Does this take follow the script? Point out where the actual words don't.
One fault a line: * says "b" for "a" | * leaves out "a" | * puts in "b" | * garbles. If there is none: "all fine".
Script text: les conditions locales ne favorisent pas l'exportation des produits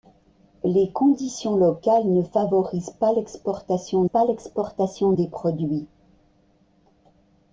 * puts in "pas l'exportation"